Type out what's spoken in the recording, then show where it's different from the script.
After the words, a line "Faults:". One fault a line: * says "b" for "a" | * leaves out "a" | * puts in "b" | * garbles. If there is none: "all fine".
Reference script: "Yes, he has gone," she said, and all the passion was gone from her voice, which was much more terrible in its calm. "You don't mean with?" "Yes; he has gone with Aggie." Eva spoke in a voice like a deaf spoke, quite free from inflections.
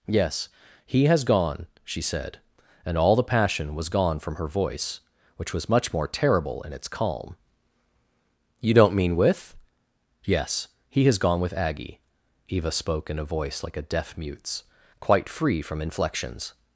"Yes, he has gone," she said, and all the passion was gone from her voice, which was much more terrible in its calm. "You don't mean with?" "Yes; he has gone with Aggie." Eva spoke in a voice like a deaf mute's, quite free from inflections.
Faults:
* says "mute's" for "spoke"